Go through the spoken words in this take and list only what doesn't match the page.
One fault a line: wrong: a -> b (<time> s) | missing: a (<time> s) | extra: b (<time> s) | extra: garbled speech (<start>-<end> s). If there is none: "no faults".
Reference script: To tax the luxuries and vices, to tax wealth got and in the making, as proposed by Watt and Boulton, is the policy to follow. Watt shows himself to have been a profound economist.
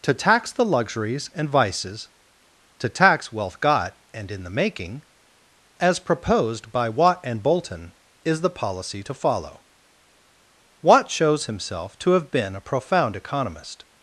no faults